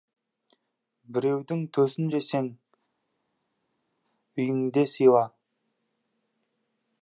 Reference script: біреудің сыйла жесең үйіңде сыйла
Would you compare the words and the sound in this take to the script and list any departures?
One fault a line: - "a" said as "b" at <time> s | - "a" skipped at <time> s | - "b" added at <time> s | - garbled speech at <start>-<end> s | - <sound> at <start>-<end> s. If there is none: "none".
- "сыйла" said as "төсін" at 1.8 s